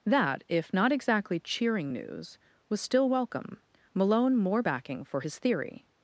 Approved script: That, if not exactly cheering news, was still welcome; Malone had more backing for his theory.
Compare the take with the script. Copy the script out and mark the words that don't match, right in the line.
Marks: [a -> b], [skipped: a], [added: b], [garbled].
That, if not exactly cheering news, was still welcome; Malone [skipped: had] more backing for his theory.